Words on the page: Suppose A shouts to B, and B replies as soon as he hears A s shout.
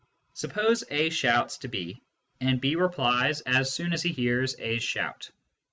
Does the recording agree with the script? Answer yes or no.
yes